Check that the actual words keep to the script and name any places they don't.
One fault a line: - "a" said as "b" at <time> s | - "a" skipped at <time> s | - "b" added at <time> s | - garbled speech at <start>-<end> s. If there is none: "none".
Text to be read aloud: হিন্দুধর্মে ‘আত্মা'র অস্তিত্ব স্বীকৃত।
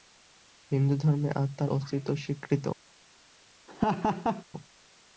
none